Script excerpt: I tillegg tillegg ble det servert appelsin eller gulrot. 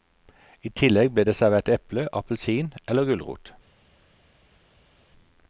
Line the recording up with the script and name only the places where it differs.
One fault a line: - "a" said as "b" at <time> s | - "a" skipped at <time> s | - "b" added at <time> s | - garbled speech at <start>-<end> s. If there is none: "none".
- "tillegg" skipped at 1.1 s
- "eple" added at 1.8 s